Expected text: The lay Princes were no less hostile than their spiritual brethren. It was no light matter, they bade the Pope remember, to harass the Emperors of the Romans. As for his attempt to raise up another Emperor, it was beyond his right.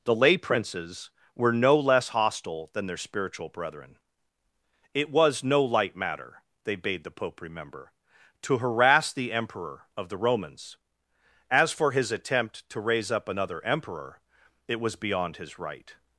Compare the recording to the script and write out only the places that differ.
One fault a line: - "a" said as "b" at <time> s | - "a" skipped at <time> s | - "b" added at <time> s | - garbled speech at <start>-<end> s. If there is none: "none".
- "Emperors" said as "Emperor" at 9.3 s